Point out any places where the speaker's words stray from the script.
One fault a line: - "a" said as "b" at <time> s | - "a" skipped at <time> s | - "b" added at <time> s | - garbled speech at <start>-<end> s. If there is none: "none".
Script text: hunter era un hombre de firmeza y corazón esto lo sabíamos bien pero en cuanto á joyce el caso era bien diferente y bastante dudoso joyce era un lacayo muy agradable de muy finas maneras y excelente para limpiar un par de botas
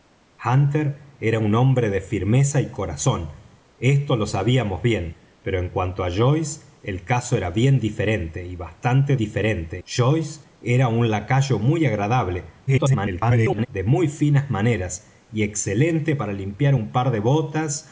- "dudoso" said as "diferente" at 9.2 s
- garbled speech at 12.7-13.7 s